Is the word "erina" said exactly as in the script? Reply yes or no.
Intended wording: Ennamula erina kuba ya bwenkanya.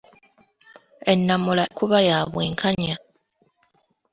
no